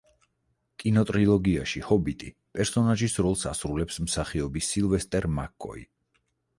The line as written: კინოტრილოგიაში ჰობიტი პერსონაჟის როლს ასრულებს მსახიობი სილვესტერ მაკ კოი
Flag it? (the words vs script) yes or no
no